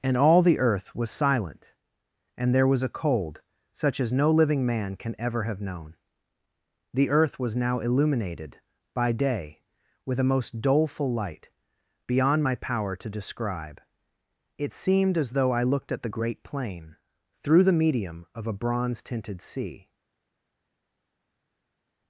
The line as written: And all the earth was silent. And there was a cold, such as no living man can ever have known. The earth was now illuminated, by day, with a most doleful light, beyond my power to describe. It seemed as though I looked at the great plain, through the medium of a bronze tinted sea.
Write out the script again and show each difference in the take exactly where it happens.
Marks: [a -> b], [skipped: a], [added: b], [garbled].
And all the earth was silent. And there was a cold, such as no living man can ever have known. The earth was now illuminated, by day, with a most doleful light, beyond my power to describe. It seemed as though I looked at the great plain, through the medium of a bronze tinted sea.